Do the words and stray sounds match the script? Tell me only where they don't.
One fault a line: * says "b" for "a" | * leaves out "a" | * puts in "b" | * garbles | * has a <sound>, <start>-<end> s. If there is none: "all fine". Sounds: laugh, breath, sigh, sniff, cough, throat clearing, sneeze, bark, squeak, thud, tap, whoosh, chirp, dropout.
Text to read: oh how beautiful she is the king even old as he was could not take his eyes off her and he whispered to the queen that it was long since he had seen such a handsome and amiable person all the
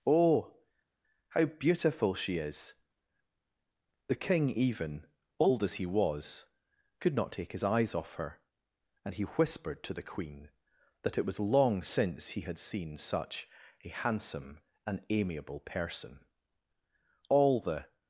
all fine